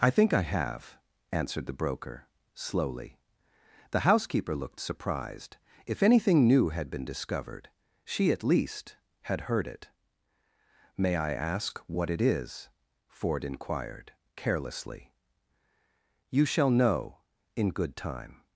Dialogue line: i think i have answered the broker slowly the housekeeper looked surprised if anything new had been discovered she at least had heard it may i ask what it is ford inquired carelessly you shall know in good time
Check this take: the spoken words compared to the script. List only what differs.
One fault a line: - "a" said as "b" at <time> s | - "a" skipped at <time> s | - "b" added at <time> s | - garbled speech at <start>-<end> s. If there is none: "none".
none